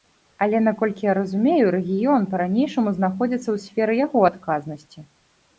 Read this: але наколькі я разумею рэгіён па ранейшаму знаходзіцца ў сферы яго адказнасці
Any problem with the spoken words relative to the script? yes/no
no